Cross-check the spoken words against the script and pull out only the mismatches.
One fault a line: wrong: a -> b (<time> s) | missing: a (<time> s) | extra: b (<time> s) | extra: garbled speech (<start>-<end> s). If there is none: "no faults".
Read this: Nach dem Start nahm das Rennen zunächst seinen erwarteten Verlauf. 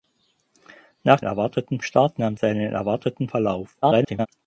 wrong: dem -> erwarteten (1.2 s)
missing: das Rennen zunächst (2.4 s)
extra: garbled speech (3.8-4.3 s)